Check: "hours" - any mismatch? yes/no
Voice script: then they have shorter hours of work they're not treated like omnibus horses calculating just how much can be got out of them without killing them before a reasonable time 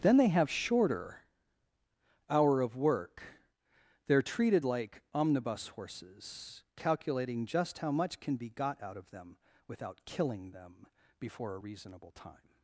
yes